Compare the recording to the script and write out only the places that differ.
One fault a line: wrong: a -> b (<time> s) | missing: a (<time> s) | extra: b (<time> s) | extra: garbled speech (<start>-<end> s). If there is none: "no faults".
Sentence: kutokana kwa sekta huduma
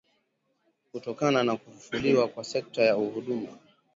extra: na kufufuliwa (1.4 s)
extra: ya (2.8 s)